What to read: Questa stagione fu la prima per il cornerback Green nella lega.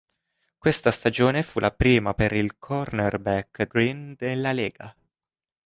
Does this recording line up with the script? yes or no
yes